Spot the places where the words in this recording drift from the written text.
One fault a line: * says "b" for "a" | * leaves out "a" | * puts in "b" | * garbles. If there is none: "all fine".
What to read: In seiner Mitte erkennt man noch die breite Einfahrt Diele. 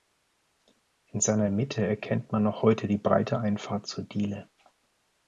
* puts in "heute"
* puts in "zur"